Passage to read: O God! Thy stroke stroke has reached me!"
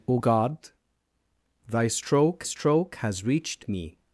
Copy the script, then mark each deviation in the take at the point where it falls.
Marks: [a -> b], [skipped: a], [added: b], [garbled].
O God! Thy stroke stroke has reached me!"